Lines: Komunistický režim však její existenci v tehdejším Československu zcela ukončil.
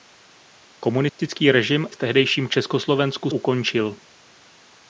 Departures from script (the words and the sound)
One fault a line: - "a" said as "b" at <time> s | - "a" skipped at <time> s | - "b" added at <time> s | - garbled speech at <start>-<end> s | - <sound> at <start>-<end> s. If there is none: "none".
- dropout at 1.1-1.2 s
- "však její existenci" skipped at 1.9 s
- "zcela" skipped at 3.3 s